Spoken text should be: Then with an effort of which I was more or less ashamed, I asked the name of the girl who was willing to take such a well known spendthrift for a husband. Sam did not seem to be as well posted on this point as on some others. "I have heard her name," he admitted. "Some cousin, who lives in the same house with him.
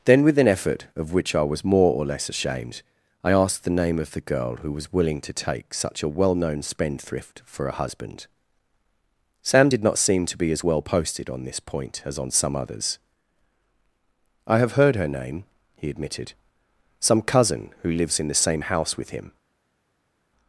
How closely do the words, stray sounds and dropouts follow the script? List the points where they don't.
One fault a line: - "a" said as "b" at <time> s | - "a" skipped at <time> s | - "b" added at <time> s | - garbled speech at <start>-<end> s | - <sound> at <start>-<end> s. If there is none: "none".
none